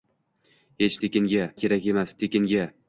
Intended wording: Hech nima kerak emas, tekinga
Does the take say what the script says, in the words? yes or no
no